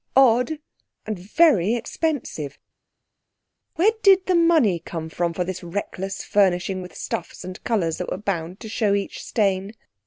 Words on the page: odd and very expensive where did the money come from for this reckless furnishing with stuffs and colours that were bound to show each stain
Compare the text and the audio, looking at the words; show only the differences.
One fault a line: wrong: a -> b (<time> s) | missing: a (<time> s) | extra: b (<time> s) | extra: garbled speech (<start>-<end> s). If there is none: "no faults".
no faults